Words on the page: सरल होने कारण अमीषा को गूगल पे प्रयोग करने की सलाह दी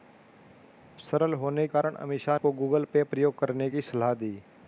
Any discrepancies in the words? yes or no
no